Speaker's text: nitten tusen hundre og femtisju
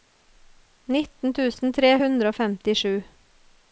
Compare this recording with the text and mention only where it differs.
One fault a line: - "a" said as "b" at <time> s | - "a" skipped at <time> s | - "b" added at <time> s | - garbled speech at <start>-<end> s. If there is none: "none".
- "tre" added at 1.8 s